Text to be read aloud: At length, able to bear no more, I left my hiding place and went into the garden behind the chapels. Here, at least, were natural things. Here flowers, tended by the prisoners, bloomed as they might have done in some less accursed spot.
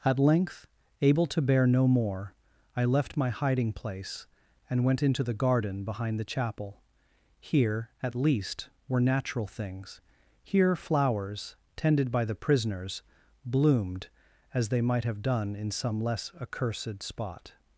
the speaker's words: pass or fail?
fail